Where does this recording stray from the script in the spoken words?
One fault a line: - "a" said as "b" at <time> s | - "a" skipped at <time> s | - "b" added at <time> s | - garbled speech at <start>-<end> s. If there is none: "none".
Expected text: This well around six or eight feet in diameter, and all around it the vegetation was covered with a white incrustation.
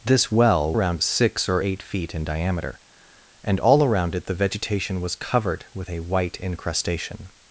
none